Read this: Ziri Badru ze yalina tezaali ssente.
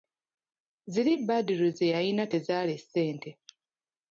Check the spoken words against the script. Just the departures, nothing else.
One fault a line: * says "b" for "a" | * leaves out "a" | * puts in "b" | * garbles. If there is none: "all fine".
all fine